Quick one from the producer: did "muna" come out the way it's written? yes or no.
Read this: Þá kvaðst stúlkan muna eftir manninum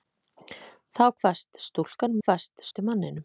no